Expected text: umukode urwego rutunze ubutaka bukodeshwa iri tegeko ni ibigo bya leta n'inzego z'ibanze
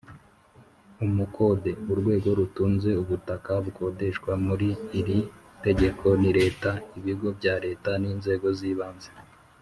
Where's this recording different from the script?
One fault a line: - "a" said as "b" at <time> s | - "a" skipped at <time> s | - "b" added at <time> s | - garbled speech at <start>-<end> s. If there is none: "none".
- "muri" added at 4.5 s
- "leta" added at 6.4 s